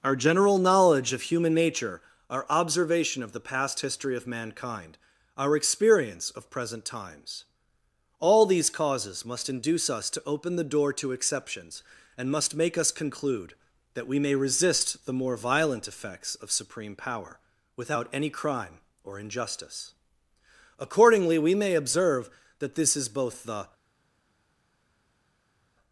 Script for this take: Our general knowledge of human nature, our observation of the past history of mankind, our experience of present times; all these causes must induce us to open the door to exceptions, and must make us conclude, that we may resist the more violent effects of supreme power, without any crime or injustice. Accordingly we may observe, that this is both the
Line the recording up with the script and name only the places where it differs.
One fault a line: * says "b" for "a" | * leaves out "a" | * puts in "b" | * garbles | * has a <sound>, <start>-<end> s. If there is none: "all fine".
all fine